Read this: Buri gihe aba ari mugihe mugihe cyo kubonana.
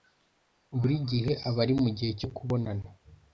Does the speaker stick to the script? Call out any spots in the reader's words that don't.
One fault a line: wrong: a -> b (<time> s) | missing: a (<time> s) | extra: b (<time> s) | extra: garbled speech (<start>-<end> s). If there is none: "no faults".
missing: mugihe (2.1 s)